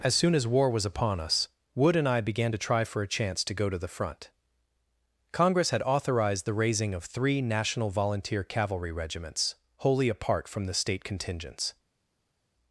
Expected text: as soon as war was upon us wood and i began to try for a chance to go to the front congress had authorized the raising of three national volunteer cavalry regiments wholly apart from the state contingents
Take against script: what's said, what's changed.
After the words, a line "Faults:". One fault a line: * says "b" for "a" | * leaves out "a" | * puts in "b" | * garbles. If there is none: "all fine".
as soon as war was upon us wood and i began to try for a chance to go to the front congress had authorized the raising of three national volunteer cavalry regiments wholly apart from the state contingents
Faults:
all fine